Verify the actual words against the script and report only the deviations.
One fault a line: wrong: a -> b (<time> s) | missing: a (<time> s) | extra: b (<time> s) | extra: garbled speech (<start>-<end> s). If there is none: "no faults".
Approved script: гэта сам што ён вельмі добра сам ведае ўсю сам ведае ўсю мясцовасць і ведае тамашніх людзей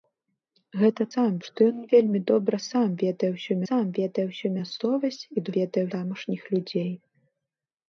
no faults